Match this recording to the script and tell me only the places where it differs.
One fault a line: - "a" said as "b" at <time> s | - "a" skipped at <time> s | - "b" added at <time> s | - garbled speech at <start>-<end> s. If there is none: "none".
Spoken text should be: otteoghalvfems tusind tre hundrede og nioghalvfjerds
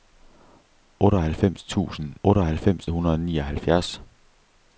- "tre" said as "otteoghalvfems" at 2.2 s